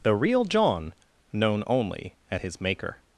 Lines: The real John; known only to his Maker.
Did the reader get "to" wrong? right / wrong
wrong